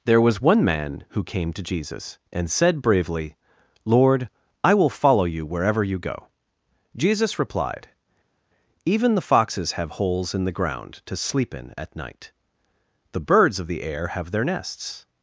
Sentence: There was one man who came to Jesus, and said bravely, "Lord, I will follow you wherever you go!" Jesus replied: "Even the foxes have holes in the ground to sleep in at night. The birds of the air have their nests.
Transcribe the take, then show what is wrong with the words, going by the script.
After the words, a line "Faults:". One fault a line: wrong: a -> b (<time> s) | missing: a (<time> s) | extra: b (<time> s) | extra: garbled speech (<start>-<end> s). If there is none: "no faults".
There was one man who came to Jesus, and said bravely, "Lord, I will follow you wherever you go!" Jesus replied: "Even the foxes have holes in the ground to sleep in at night. The birds of the air have their nests.
Faults:
no faults